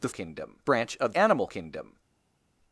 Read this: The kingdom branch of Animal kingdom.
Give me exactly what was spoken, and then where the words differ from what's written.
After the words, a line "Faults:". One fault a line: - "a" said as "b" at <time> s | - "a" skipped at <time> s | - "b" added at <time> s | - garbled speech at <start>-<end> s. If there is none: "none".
The kingdom branch of Animal kingdom.
Faults:
none